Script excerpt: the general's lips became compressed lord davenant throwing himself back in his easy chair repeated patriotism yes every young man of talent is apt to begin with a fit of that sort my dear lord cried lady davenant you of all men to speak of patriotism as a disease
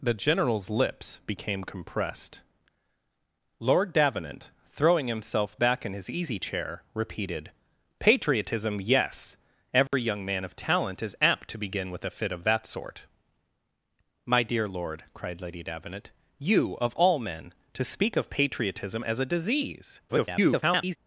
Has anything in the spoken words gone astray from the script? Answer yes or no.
yes